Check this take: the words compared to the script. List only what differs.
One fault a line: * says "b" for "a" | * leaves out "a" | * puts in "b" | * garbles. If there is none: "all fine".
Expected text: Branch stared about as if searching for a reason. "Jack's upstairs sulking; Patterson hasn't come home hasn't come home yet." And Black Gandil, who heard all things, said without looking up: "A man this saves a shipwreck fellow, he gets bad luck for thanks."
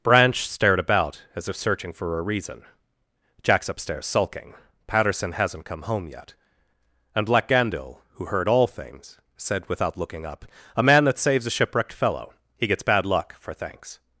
* leaves out "hasn't come home"
* says "that" for "this"
* says "shipwrecked" for "shipwreck"